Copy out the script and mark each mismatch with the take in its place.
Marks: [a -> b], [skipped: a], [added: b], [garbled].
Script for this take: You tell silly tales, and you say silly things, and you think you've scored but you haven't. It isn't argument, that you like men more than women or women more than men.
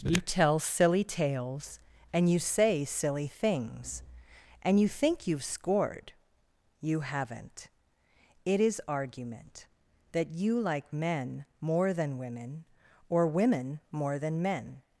You tell silly tales, and you say silly things, and you think you've scored [skipped: but] you haven't. It [isn't -> is] argument, that you like men more than women or women more than men.